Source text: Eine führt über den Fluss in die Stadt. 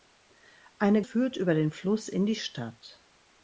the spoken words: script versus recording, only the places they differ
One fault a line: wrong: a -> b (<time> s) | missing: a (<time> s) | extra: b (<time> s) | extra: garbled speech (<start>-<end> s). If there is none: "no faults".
no faults